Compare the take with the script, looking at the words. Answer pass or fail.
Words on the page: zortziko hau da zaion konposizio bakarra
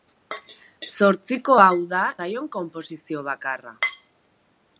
pass